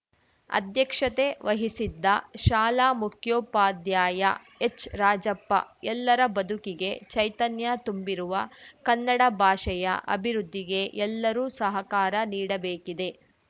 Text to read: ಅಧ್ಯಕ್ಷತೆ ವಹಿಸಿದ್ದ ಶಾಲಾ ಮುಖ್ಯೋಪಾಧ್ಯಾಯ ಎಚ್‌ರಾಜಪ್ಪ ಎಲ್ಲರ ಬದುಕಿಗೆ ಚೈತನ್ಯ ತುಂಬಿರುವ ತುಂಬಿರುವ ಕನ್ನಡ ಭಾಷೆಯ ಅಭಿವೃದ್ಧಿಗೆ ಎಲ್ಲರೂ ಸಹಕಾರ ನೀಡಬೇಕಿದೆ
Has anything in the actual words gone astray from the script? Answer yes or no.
yes